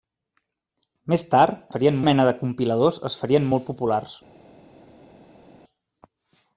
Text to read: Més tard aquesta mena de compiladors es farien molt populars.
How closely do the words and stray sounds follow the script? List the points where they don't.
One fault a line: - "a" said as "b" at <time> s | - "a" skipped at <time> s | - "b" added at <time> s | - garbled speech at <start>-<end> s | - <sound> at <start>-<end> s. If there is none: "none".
- "aquesta" said as "farien" at 1.8 s